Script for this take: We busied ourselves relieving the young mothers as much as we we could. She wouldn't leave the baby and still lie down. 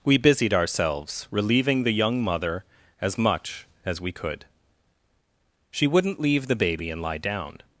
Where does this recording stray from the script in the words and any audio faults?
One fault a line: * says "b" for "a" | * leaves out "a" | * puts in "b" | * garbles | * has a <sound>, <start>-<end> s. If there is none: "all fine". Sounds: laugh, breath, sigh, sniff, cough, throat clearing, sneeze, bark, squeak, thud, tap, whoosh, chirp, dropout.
* says "mother" for "mothers"
* leaves out "we"
* leaves out "still"